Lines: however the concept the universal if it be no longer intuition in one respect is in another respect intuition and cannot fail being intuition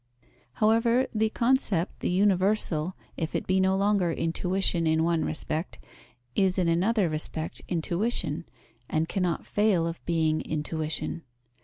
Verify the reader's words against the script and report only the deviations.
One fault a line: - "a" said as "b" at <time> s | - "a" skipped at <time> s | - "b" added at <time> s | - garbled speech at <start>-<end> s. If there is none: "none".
- "of" added at 9.8 s